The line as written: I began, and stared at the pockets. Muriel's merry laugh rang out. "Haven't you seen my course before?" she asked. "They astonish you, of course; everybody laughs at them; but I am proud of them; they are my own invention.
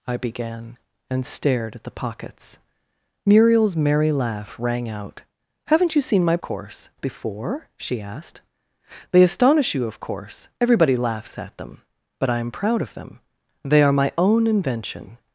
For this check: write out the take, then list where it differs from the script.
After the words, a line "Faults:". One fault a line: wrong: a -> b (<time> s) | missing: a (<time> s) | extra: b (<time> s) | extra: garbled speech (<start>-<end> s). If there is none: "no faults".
I began, and stared at the pockets. Muriel's merry laugh rang out. "Haven't you seen my course before?" she asked. "They astonish you, of course; everybody laughs at them; but I am proud of them; they are my own invention.
Faults:
no faults